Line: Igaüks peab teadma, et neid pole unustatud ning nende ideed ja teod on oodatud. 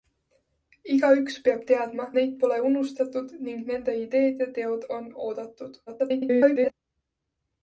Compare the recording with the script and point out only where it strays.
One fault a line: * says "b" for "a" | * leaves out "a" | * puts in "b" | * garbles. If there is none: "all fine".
* leaves out "et"
* garbles